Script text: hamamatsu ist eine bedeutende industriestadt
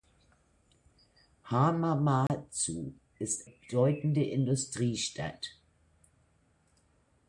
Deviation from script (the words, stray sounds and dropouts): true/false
true